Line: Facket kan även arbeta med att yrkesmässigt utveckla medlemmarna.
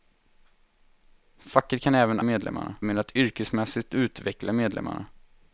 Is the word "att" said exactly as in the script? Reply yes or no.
yes